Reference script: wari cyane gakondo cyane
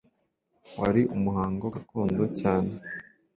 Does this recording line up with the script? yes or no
no